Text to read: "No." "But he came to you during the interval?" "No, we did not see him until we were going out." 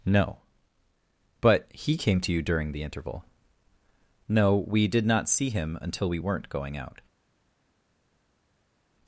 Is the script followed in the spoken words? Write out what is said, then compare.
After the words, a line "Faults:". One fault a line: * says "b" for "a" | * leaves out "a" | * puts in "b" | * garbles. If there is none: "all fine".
"No." "But he came to you during the interval?" "No, we did not see him until we weren't going out."
Faults:
* says "weren't" for "were"